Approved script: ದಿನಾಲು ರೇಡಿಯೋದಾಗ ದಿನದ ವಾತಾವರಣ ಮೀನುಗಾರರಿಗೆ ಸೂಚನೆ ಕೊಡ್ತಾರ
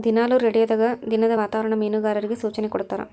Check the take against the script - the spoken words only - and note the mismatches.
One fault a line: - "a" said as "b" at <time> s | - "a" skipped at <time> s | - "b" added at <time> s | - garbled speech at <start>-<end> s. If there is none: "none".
none